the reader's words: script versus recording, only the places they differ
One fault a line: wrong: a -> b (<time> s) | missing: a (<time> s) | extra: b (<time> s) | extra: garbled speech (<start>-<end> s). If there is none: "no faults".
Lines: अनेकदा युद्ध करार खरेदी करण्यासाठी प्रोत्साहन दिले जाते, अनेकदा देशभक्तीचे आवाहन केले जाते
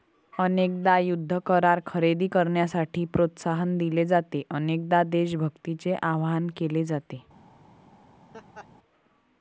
no faults